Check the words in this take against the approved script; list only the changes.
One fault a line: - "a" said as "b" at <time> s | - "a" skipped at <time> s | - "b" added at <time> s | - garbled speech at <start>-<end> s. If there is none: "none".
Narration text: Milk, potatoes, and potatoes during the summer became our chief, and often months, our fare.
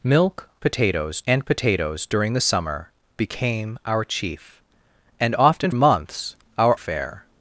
none